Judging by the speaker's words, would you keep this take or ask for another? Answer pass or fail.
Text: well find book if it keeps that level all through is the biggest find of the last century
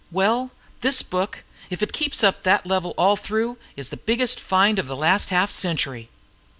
fail